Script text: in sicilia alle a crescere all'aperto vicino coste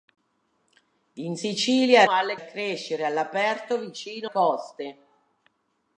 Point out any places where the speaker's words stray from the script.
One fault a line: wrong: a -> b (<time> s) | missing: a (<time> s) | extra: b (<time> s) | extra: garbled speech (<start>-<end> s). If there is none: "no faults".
no faults